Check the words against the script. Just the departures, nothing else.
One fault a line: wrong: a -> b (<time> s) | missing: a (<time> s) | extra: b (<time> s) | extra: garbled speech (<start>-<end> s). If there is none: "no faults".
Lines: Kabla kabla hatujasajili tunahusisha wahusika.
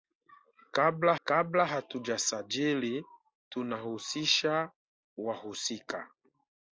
no faults